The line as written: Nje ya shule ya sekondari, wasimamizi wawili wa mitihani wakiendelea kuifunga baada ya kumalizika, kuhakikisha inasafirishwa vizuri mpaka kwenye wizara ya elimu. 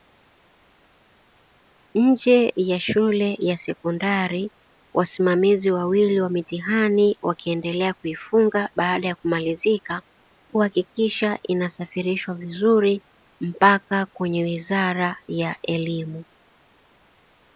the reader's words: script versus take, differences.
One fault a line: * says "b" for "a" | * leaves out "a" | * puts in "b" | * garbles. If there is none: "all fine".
all fine